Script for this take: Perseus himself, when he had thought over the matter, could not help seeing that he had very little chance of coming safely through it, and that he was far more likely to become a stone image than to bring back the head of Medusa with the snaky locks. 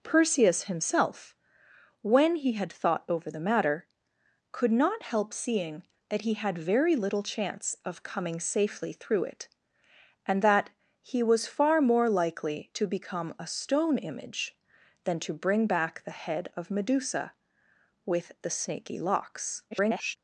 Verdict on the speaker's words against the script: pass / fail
fail